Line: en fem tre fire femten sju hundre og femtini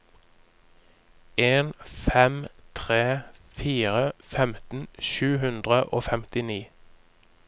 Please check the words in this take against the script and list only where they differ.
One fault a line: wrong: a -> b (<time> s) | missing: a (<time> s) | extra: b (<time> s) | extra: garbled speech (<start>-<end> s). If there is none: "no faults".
no faults